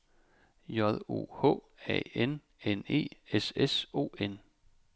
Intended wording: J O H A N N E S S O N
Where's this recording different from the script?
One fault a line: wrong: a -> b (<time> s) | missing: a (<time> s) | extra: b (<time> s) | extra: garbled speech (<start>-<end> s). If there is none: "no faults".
no faults